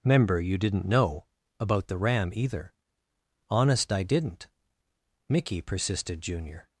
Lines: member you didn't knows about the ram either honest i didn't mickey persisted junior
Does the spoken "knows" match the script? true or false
false